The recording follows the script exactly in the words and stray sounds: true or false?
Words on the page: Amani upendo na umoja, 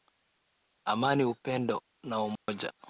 false